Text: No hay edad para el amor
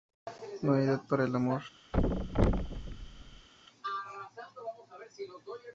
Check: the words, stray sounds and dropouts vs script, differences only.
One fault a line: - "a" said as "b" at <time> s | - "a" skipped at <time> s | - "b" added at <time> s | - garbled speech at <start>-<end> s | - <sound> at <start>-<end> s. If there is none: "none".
- thud at 1.9-3.5 s